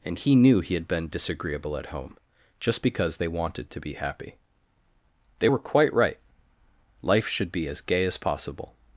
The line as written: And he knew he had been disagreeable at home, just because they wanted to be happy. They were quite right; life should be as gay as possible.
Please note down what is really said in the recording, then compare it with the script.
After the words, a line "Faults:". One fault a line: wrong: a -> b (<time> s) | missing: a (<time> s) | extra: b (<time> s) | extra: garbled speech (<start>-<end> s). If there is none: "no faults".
And he knew he had been disagreeable at home, just because they wanted to be happy. They were quite right; life should be as gay as possible.
Faults:
no faults